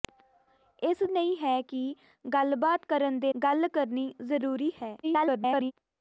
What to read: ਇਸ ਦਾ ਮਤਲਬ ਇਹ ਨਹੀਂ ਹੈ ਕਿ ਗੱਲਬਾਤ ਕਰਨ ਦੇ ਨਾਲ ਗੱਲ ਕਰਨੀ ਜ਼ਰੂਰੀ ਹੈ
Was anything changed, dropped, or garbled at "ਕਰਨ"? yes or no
no